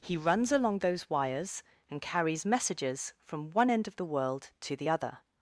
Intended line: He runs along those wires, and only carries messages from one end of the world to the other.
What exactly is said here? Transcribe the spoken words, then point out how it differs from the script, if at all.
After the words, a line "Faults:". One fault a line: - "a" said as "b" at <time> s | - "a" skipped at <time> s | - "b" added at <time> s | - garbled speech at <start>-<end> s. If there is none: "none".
He runs along those wires, and carries messages from one end of the world to the other.
Faults:
- "only" skipped at 2.0 s